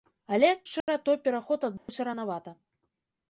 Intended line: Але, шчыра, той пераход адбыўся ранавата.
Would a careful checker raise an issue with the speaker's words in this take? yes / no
no